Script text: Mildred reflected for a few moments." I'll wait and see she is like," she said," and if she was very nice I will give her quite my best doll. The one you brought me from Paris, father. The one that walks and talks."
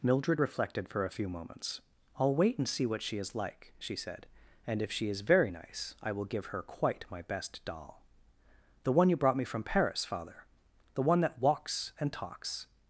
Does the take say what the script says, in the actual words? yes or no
no